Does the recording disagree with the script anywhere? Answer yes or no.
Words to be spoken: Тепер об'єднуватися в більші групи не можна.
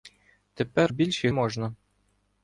yes